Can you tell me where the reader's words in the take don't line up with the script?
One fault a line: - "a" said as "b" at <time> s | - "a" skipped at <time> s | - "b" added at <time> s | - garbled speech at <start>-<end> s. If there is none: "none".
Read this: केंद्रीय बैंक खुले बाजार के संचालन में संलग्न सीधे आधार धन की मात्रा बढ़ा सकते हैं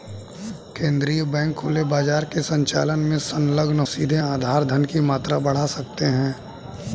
none